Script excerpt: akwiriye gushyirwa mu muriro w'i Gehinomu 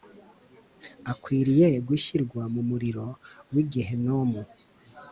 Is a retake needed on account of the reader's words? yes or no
no